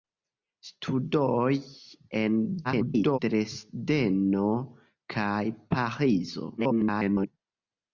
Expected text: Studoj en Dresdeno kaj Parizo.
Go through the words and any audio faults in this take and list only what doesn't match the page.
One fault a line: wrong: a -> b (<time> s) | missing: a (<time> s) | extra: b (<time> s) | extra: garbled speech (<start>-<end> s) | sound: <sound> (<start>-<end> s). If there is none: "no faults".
extra: garbled speech (2.6-3.2 s)
extra: garbled speech (6.6-7.3 s)